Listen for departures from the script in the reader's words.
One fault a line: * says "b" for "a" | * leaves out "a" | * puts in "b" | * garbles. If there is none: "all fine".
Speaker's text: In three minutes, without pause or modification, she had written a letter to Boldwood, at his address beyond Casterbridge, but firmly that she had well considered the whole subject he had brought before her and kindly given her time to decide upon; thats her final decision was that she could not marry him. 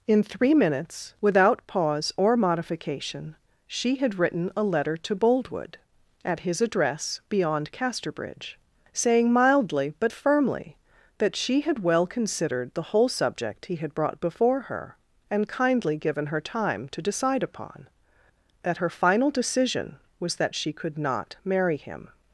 * puts in "saying mildly"
* says "that" for "thats"